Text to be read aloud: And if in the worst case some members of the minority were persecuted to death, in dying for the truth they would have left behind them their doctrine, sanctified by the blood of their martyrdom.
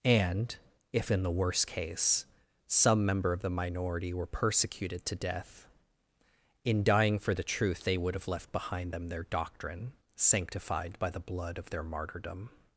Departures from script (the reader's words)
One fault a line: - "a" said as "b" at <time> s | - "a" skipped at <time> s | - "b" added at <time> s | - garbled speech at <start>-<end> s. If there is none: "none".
- "members" said as "member" at 3.0 s